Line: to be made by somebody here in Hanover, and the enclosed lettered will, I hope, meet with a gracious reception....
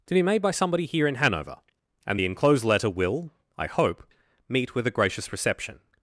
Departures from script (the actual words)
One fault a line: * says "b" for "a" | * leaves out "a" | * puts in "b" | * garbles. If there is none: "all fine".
* says "letter" for "lettered"